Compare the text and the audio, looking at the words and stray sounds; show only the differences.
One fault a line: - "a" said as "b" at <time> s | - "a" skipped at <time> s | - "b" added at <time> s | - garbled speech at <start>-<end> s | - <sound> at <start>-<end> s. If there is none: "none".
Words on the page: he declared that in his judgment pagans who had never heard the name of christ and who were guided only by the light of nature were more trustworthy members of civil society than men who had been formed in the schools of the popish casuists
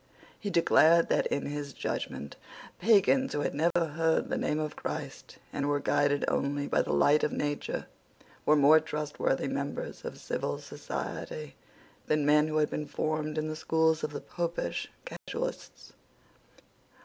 - dropout at 3.7-3.8 s
- dropout at 15.2-15.3 s